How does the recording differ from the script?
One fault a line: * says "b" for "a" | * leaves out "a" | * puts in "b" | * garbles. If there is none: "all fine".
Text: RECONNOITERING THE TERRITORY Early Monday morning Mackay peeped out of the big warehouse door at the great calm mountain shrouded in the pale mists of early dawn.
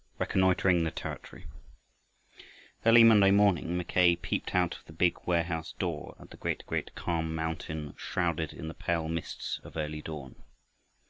* puts in "great"